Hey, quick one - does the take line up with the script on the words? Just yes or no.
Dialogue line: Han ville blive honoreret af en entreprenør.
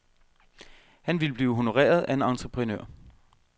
yes